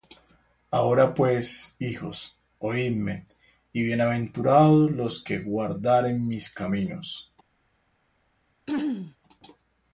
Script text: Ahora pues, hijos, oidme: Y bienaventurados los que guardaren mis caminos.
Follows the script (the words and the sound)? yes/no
no